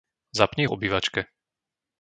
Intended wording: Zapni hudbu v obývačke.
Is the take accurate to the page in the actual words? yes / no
no